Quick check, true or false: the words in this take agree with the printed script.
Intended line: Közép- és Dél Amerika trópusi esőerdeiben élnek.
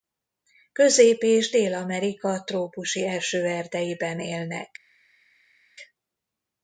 true